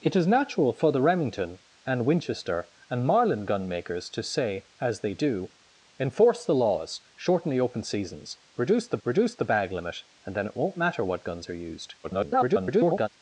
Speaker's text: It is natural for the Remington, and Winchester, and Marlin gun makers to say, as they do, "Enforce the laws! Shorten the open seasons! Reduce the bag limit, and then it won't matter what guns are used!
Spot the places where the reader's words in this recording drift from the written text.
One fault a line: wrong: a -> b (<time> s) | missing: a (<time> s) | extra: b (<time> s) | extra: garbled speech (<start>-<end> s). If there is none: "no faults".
extra: reduce the (9.0 s)
extra: garbled speech (12.0-13.1 s)